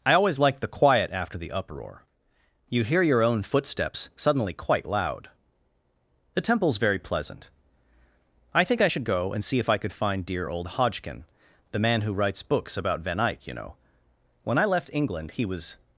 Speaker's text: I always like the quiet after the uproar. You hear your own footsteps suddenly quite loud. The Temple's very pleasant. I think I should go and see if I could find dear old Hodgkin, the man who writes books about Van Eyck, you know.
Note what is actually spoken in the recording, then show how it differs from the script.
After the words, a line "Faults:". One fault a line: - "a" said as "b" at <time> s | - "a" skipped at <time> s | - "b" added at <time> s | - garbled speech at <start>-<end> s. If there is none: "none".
I always like the quiet after the uproar. You hear your own footsteps suddenly quite loud. The Temple's very pleasant. I think I should go and see if I could find dear old Hodgkin, the man who writes books about Van Eyck, you know. When I left England he was
Faults:
- "When I left England he was" added at 14.4 s